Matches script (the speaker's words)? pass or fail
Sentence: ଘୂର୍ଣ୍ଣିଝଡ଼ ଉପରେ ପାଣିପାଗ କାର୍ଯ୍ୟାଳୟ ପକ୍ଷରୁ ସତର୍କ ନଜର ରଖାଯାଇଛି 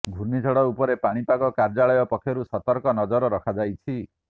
pass